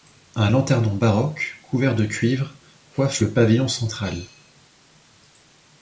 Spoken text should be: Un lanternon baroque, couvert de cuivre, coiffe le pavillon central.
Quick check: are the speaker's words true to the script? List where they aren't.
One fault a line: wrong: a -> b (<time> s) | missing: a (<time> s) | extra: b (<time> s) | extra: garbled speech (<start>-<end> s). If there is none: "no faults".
no faults